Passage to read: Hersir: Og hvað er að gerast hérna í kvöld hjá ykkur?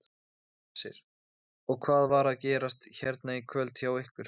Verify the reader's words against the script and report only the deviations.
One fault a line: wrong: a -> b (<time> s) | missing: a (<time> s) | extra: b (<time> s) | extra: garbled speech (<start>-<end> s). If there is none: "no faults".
wrong: er -> var (2.1 s)